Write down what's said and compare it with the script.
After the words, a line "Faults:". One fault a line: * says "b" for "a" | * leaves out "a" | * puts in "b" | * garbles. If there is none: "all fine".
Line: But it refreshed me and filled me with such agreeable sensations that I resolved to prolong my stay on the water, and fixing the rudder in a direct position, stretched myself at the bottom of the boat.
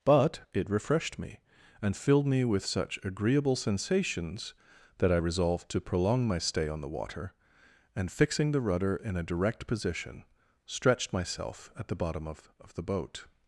But it refreshed me and filled me with such agreeable sensations that I resolved to prolong my stay on the water, and fixing the rudder in a direct position, stretched myself at the bottom of of the boat.
Faults:
* puts in "of"